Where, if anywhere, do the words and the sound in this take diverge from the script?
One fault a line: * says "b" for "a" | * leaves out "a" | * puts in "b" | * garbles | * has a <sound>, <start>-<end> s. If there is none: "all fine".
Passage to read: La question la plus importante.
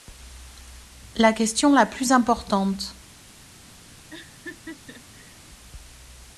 * has a laugh, 4.1-5.4 s